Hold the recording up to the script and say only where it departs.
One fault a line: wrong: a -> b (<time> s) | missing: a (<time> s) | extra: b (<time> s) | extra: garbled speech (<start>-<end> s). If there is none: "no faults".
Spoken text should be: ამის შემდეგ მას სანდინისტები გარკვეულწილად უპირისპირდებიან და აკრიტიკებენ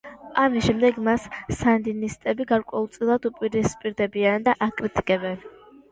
no faults